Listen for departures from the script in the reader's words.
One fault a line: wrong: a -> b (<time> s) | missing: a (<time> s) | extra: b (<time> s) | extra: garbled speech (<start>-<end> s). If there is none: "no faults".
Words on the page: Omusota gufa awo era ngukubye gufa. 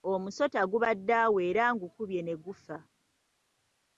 wrong: gufa -> gubadde (0.7 s)
extra: ne (2.2 s)